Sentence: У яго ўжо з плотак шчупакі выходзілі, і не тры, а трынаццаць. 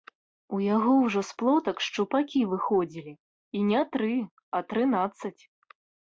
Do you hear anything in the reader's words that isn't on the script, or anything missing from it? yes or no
no